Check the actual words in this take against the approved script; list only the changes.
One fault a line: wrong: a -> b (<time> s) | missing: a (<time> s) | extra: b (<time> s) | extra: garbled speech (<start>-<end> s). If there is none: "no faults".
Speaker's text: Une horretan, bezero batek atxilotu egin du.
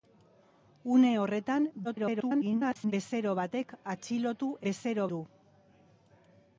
extra: garbled speech (1.8-2.9 s)
wrong: egin -> bezero (4.7 s)